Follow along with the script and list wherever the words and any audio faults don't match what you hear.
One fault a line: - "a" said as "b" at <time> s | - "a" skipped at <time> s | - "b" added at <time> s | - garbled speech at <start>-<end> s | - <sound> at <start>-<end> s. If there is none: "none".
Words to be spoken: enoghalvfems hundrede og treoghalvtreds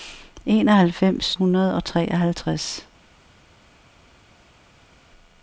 none